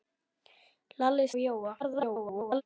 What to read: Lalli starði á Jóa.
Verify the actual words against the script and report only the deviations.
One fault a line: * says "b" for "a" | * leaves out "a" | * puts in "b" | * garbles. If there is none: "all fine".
* leaves out "starði"
* garbles